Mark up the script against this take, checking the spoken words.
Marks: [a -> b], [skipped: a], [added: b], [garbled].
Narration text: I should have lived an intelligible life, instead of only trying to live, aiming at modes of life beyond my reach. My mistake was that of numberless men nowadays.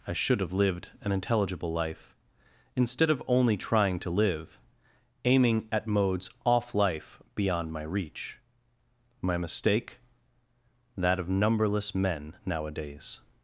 I should have lived an intelligible life, instead of only trying to live, aiming at modes [of -> off] life beyond my reach. My mistake [skipped: was] that of numberless men nowadays.